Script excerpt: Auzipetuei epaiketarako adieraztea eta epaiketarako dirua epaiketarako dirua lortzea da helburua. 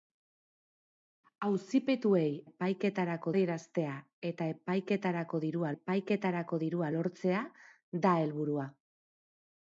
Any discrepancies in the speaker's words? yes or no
no